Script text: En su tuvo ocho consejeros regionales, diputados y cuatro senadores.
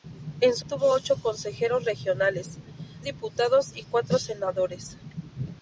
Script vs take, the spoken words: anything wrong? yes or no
no